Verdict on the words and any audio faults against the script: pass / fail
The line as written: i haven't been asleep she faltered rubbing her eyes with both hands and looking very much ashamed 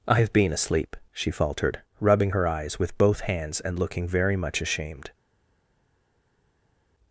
fail